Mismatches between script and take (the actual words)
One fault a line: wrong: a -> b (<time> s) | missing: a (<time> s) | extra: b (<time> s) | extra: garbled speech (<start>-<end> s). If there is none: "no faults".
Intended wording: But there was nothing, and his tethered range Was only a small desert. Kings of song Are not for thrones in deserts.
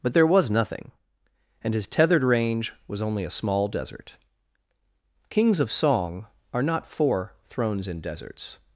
no faults